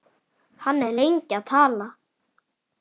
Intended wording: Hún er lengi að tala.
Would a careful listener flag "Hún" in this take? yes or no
yes